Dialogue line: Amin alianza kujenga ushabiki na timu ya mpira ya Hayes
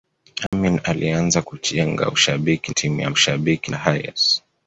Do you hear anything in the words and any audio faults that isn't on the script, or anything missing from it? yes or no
yes